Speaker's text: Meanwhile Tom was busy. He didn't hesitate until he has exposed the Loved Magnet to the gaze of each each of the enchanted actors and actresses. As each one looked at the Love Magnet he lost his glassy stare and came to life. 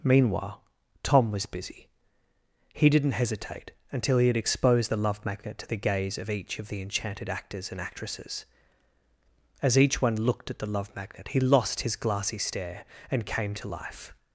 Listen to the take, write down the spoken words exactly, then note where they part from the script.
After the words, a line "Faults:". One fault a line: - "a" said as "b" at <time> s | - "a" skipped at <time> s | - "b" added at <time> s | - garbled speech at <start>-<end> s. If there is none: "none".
Meanwhile Tom was busy. He didn't hesitate until he had exposed the Love Magnet to the gaze of each of the enchanted actors and actresses. As each one looked at the Love Magnet he lost his glassy stare and came to life.
Faults:
- "has" said as "had" at 4.3 s
- "Loved" said as "Love" at 5.0 s
- "each" skipped at 6.6 s